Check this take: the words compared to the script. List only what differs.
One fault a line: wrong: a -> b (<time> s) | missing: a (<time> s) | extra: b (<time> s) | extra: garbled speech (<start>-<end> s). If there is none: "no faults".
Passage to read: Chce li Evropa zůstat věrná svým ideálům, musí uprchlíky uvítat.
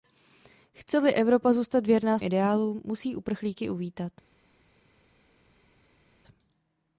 missing: svým (2.2 s)